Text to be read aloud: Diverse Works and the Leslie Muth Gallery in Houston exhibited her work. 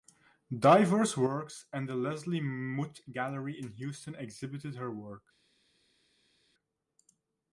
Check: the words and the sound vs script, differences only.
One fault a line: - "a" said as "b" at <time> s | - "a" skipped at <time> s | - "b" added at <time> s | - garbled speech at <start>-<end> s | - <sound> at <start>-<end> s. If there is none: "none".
none